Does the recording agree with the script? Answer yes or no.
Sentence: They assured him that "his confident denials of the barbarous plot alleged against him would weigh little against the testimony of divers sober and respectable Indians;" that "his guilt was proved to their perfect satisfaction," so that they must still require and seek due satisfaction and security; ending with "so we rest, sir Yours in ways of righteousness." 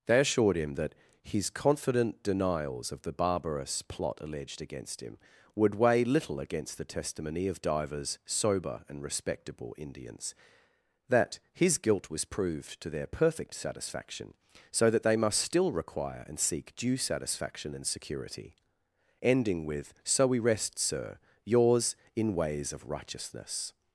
yes